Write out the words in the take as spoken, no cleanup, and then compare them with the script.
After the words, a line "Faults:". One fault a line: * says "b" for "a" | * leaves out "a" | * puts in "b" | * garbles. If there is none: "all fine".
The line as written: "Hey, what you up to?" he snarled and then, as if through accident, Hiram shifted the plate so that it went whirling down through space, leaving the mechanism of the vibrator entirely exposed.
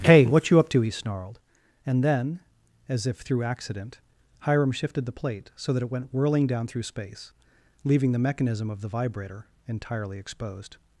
"Hey, what you up to?" he snarled and then, as if through accident, Hiram shifted the plate so that it went whirling down through space, leaving the mechanism of the vibrator entirely exposed.
Faults:
all fine